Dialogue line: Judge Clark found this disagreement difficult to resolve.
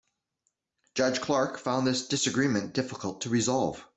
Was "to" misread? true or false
false